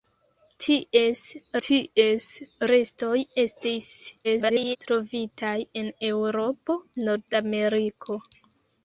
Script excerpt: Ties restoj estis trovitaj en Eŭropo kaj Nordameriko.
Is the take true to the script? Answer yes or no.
no